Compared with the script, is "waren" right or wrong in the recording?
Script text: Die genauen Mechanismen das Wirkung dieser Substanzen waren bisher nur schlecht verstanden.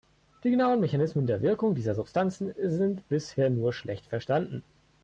wrong